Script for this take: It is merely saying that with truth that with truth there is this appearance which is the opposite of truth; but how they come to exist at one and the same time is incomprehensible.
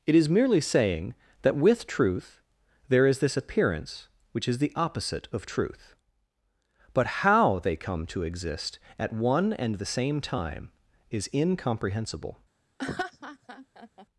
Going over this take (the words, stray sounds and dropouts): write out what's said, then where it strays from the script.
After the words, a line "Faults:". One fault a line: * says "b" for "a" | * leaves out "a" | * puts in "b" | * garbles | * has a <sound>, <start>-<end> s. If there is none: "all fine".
It is merely saying that with truth there is this appearance which is the opposite of truth; but how they come to exist at one and the same time is incomprehensible.
Faults:
* leaves out "that with truth"
* has a laugh, 12.8-14.1 s